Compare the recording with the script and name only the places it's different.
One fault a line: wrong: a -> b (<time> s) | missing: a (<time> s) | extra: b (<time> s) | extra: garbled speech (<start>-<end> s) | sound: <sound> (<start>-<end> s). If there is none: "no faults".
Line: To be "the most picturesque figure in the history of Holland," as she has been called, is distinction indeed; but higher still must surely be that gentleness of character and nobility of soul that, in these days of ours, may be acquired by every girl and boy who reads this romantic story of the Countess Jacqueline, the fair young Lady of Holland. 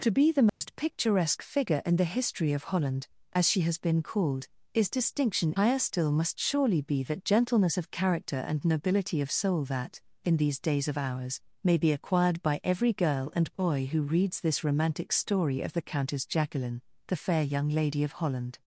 sound: dropout (0.5-0.6 s)
missing: indeed but (5.5 s)